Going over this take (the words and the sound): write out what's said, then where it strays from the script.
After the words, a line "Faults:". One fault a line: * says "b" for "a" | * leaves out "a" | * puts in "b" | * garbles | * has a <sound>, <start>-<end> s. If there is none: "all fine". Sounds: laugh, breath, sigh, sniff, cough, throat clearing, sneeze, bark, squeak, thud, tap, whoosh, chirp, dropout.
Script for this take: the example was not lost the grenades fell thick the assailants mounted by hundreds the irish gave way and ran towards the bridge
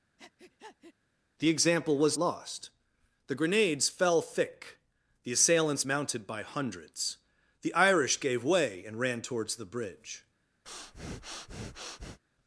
the example was lost the grenades fell thick the assailants mounted by hundreds the irish gave way and ran towards the bridge
Faults:
* has a breath, 0.2-0.9 s
* leaves out "not"
* has a breath, 10.6-12.2 s